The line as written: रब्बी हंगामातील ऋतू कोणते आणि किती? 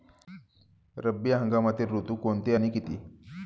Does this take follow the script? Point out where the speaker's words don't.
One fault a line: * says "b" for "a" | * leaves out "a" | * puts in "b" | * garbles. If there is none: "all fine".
all fine